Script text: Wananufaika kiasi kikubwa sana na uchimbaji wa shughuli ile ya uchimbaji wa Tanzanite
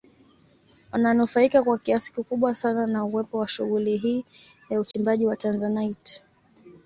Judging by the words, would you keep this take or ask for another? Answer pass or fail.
fail